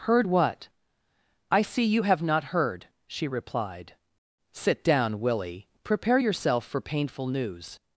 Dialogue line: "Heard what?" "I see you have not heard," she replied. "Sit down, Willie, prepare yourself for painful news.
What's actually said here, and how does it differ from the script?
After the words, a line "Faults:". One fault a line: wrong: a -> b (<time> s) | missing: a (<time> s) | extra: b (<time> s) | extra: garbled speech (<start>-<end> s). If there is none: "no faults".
"Heard what?" "I see you have not heard," she replied. "Sit down, Willie, prepare yourself for painful news.
Faults:
no faults